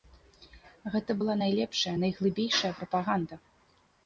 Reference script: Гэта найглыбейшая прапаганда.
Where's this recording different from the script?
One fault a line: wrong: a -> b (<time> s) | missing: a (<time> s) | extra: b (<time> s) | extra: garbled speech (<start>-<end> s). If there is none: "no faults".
extra: была найлепшая (1.2 s)